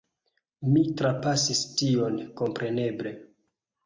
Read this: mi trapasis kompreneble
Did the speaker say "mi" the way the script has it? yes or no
yes